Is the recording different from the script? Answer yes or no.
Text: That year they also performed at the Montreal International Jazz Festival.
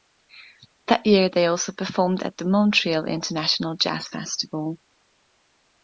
no